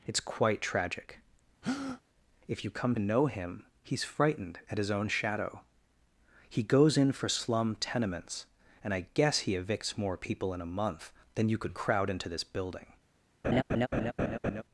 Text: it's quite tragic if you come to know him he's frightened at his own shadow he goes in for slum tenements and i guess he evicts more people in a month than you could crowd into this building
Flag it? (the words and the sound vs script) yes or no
yes